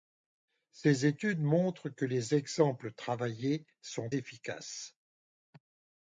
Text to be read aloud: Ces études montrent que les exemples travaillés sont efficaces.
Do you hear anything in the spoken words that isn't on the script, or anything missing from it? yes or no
no